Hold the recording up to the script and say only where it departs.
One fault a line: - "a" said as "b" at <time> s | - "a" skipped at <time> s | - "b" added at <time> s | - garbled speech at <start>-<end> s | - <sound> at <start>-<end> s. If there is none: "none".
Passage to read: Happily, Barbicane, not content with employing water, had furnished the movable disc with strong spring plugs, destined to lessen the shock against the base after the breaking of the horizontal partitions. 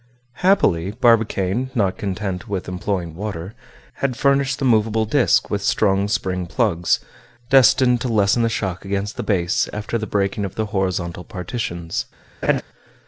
- laugh at 12.4-12.6 s